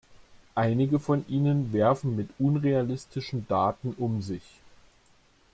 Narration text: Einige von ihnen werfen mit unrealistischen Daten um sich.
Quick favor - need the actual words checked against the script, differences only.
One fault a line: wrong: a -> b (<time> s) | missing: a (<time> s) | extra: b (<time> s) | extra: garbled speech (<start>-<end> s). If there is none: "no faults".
no faults